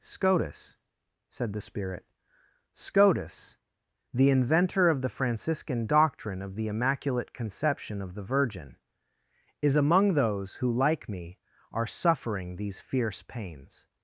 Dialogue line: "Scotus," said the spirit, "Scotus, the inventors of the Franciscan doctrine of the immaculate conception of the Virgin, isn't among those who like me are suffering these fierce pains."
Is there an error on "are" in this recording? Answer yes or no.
no